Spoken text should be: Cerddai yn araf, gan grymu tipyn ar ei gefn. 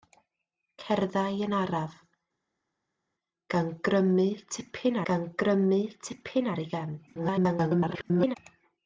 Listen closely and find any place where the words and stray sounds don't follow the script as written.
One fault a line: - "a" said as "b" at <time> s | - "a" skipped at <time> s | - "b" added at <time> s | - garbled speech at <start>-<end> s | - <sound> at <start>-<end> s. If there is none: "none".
- "gan grymu tipyn" added at 5.1 s
- garbled speech at 7.1-8.4 s